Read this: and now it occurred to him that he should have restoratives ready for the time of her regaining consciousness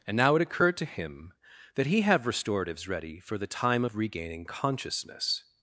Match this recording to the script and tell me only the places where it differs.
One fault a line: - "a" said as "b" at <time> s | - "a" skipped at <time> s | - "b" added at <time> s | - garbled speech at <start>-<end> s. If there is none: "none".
- "should" skipped at 2.0 s
- "her" skipped at 4.0 s